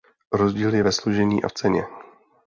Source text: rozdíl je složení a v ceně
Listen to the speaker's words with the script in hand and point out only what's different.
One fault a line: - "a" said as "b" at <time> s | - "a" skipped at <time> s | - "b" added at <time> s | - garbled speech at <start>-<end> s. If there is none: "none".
- "ve" added at 0.8 s